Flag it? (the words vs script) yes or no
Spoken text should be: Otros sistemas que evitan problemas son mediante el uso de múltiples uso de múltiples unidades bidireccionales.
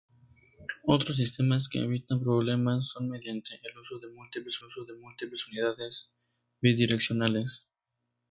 no